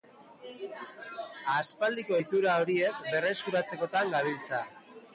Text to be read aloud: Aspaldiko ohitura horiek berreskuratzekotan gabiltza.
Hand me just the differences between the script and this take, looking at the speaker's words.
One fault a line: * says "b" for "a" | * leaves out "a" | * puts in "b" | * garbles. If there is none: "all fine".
all fine